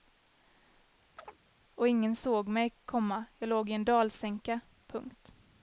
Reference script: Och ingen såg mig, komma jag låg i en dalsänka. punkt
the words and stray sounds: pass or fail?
fail